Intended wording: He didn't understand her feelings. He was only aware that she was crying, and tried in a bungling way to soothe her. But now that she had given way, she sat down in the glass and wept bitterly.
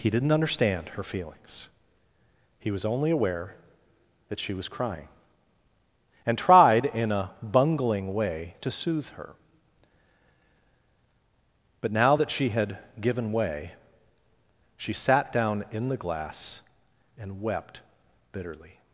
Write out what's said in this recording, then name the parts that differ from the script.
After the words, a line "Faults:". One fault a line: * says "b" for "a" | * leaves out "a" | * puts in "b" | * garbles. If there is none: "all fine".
He didn't understand her feelings. He was only aware that she was crying, and tried in a bungling way to soothe her. But now that she had given way, she sat down in the glass and wept bitterly.
Faults:
all fine